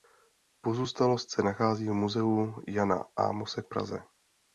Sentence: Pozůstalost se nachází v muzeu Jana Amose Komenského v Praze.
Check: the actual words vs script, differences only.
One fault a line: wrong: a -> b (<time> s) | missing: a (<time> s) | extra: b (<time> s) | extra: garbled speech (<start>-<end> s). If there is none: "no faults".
missing: Komenského (3.6 s)